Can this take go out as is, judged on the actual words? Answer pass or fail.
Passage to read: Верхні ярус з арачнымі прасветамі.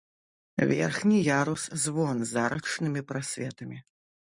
fail